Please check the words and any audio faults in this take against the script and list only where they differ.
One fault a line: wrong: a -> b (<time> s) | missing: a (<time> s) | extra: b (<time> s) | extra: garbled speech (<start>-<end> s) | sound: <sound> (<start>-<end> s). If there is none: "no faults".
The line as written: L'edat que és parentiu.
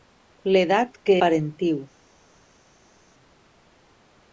missing: és (1.2 s)